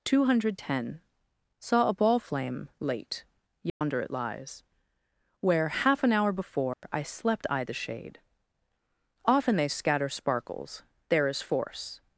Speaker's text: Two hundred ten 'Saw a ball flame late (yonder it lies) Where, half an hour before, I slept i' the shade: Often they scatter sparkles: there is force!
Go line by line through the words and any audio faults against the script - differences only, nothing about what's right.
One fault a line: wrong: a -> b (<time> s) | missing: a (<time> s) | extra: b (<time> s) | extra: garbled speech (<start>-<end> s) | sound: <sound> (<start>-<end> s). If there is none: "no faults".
sound: dropout (3.7-3.8 s)
sound: dropout (6.7-6.8 s)